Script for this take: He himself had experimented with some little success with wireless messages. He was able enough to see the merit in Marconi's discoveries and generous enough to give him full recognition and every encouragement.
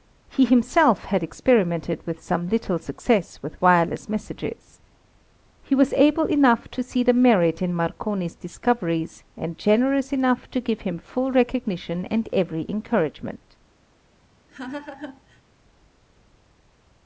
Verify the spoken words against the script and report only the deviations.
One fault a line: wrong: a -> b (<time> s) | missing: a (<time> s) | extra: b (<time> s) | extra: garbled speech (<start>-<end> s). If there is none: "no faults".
no faults